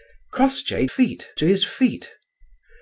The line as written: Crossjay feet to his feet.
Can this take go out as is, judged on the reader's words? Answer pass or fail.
pass